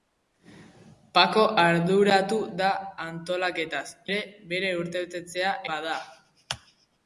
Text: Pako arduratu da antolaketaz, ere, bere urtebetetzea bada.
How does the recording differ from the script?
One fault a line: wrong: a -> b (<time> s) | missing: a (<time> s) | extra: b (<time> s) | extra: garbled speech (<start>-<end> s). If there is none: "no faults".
no faults